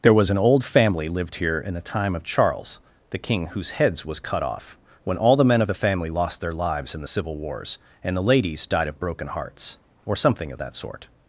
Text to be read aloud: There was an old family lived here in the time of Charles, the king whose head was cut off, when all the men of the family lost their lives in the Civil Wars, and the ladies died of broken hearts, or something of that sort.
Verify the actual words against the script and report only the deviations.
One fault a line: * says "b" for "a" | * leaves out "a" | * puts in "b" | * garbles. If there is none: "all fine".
* says "heads" for "head"